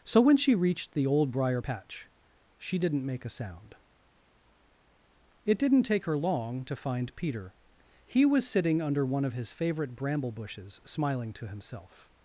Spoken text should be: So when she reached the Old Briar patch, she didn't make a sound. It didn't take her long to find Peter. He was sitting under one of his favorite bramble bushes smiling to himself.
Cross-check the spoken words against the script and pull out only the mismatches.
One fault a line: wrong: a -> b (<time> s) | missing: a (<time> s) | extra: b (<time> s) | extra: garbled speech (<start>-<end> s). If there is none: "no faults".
no faults